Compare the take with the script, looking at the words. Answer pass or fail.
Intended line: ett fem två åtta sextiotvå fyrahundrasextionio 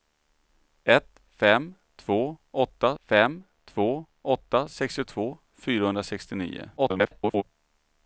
fail